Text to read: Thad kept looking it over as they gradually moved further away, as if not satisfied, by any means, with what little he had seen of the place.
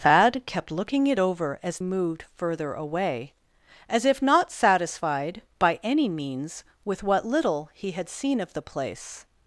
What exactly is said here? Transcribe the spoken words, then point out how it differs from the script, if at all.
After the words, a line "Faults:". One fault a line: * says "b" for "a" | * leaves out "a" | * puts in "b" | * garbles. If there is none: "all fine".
Thad kept looking it over as moved further away, as if not satisfied, by any means, with what little he had seen of the place.
Faults:
* leaves out "they gradually"